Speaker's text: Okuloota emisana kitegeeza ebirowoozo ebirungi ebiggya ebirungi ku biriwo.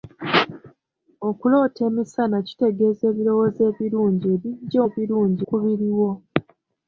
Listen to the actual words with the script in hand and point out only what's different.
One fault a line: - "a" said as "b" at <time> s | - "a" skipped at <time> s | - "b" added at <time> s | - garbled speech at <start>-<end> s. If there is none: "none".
none